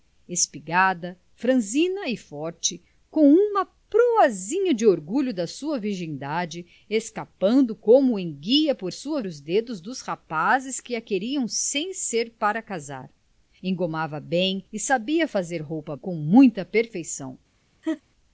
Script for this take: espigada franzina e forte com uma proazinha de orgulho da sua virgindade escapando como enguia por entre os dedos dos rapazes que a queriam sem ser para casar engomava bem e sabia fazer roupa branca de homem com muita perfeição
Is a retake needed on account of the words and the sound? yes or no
yes